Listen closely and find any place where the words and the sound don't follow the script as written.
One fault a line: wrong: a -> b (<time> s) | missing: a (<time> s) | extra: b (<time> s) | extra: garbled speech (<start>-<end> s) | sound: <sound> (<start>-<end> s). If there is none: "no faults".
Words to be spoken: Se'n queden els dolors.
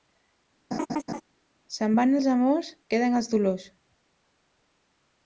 sound: laugh (0.7-1.2 s)
extra: van els amors (2.0 s)